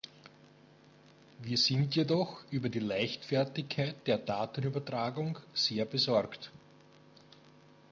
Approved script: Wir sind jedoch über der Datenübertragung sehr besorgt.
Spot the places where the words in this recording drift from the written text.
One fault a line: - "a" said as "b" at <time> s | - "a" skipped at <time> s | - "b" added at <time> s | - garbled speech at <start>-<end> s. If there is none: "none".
- "die Leichtfertigkeit" added at 2.7 s